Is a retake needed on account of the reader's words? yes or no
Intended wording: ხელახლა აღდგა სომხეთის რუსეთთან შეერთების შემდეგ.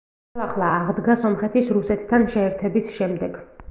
no